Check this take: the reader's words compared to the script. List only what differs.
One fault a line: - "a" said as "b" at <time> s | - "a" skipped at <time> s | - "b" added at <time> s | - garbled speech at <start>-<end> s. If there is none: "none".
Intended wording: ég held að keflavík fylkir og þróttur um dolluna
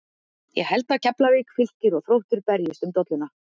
- "berjist" added at 2.5 s